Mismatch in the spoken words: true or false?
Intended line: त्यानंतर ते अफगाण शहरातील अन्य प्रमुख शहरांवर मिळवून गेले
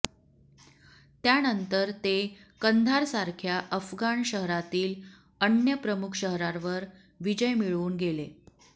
true